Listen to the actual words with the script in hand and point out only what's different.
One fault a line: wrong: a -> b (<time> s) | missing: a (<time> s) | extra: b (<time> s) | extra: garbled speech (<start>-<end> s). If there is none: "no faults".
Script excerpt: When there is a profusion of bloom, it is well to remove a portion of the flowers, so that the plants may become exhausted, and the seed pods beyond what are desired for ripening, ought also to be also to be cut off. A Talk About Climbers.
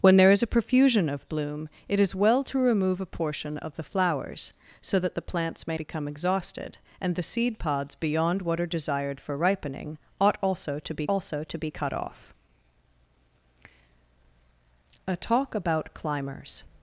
no faults